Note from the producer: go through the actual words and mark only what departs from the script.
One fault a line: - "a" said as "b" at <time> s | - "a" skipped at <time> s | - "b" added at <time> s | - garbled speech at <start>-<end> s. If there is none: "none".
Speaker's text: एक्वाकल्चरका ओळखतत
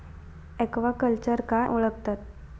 none